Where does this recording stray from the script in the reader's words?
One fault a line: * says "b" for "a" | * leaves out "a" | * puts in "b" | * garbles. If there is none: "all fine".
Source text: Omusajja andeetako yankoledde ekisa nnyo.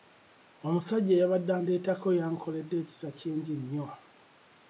* puts in "eyabadde"
* puts in "kingi"